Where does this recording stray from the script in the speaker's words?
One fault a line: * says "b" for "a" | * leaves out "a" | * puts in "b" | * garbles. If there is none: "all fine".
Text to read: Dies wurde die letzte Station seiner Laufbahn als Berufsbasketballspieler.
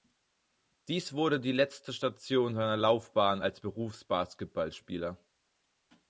all fine